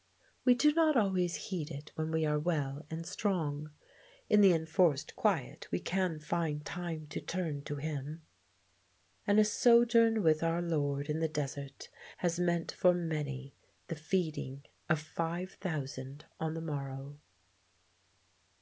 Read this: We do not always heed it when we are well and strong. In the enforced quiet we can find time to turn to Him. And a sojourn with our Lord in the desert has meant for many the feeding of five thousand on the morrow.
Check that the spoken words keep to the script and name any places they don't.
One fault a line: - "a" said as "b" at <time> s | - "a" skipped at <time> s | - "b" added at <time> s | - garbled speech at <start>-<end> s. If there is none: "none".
none